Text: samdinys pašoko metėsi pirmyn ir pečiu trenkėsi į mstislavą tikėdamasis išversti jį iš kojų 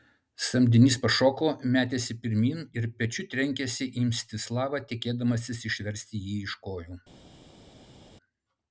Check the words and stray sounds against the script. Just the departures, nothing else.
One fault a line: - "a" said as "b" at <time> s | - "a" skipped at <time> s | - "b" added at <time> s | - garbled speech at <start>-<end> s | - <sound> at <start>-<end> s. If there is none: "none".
none